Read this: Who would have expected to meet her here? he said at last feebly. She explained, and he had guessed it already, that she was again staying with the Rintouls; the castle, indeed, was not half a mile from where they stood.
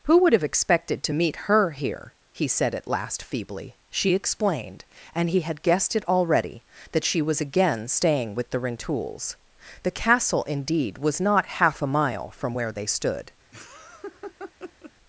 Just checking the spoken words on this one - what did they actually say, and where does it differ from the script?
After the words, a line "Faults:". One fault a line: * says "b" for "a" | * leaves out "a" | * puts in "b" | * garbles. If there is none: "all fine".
Who would have expected to meet her here? he said at last feebly. She explained, and he had guessed it already, that she was again staying with the Rintouls; the castle, indeed, was not half a mile from where they stood.
Faults:
all fine